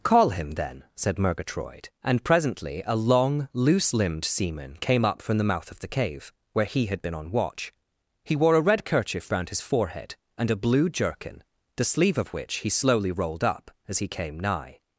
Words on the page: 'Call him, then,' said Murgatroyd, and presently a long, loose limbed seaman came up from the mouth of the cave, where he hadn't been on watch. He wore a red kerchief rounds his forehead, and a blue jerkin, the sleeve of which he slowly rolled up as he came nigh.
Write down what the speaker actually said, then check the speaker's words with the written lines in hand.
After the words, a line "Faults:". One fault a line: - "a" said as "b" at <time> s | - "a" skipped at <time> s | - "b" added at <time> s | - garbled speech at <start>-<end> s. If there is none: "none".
'Call him, then,' said Murgatroyd, and presently a long, loose limbed seaman came up from the mouth of the cave, where he had been on watch. He wore a red kerchief round his forehead, and a blue jerkin, the sleeve of which he slowly rolled up as he came nigh.
Faults:
- "hadn't" said as "had" at 6.9 s
- "rounds" said as "round" at 9.3 s